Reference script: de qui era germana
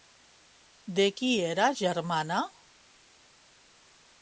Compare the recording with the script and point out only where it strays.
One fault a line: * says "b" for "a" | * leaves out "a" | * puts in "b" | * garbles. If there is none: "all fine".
all fine